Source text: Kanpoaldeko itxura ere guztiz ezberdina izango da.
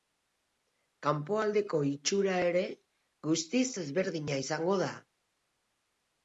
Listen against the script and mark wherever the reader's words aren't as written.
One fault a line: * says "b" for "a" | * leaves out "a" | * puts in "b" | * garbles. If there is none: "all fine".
all fine